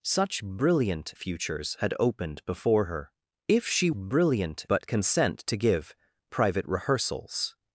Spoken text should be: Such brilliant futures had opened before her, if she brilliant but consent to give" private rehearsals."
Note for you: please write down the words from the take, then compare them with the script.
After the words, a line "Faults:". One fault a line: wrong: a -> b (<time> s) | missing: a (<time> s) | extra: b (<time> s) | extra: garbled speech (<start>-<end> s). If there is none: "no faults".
Such brilliant futures had opened before her, if she brilliant but consent to give" private rehearsals."
Faults:
no faults